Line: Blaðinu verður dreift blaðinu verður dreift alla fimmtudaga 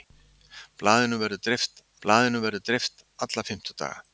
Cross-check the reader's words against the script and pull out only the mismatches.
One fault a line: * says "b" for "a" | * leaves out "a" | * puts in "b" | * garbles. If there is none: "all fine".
all fine